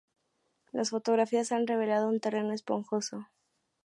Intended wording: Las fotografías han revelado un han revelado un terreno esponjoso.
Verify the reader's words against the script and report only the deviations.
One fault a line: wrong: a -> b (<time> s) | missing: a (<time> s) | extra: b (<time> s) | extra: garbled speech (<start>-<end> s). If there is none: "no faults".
missing: han revelado un (2.2 s)